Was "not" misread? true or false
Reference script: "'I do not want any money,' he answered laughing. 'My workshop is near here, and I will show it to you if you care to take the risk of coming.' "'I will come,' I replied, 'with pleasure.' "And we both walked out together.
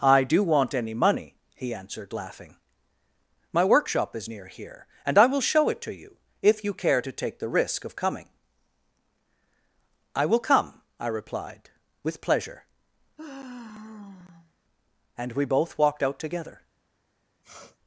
true